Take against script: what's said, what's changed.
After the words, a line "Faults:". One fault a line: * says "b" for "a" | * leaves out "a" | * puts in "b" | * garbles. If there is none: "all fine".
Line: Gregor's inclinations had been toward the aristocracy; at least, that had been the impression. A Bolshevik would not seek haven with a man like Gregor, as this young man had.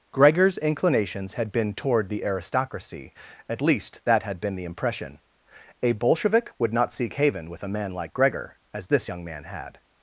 Gregor's inclinations had been toward the aristocracy; at least, that had been the impression. A Bolshevik would not seek haven with a man like Gregor, as this young man had.
Faults:
all fine